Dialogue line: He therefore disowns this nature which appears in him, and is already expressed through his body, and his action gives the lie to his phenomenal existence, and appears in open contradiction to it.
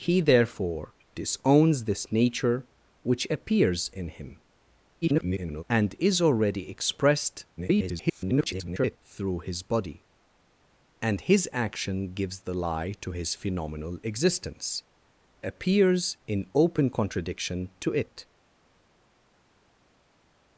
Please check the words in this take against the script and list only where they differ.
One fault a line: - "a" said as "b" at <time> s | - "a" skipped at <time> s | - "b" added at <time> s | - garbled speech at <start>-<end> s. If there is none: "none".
- garbled speech at 5.0-5.6 s
- garbled speech at 7.6-9.0 s
- "and" skipped at 14.8 s